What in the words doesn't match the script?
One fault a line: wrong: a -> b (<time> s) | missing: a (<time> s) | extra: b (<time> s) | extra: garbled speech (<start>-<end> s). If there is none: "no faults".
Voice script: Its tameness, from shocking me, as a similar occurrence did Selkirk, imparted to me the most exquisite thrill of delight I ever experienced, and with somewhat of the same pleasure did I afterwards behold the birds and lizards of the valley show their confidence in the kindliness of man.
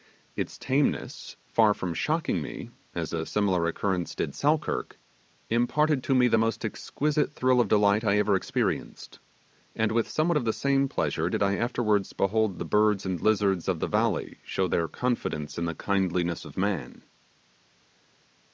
extra: far (1.5 s)